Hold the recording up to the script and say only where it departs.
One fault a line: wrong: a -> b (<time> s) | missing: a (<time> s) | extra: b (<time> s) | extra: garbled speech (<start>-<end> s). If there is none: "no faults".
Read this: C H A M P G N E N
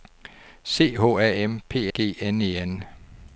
no faults